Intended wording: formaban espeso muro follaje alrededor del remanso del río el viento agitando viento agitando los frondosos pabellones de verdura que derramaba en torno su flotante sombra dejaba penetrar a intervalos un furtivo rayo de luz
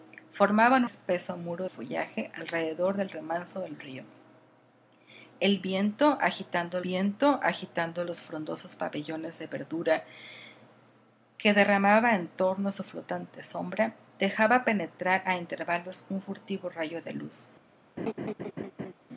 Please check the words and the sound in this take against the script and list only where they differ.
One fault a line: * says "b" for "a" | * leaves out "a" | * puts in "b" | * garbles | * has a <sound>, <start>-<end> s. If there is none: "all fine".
* has a laugh, 18.0-18.9 s